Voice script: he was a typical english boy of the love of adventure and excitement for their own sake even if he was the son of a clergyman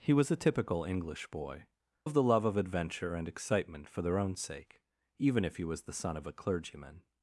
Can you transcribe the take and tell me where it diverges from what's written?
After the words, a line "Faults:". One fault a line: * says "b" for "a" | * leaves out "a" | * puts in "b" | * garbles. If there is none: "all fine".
he was a typical english boy of the love of adventure and excitement for their own sake even if he was the son of a clergyman
Faults:
all fine